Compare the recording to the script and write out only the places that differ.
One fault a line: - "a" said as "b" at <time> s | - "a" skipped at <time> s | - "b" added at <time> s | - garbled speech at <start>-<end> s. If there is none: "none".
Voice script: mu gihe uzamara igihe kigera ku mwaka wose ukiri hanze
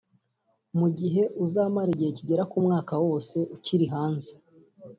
none